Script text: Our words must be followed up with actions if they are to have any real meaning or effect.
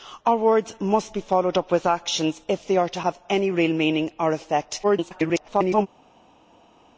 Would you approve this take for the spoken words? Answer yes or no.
no